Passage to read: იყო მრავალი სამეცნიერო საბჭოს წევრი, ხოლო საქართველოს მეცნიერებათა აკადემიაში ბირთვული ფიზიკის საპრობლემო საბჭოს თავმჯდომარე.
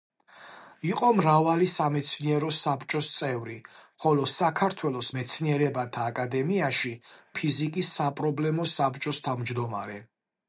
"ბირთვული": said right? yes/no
no